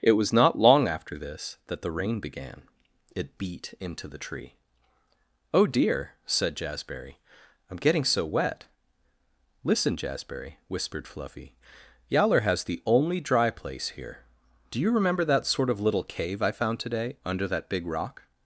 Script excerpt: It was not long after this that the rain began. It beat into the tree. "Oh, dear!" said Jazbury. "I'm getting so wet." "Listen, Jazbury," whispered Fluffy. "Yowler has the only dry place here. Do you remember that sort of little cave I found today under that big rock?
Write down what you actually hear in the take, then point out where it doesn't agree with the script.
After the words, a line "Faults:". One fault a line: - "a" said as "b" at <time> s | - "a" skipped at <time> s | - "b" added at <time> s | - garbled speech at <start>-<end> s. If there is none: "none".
It was not long after this that the rain began. It beat into the tree. "Oh, dear!" said Jazbury. "I'm getting so wet." "Listen, Jazbury," whispered Fluffy. "Yowler has the only dry place here. Do you remember that sort of little cave I found today under that big rock?
Faults:
none